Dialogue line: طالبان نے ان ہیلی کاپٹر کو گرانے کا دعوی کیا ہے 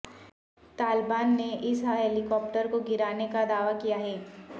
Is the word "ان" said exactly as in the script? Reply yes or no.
no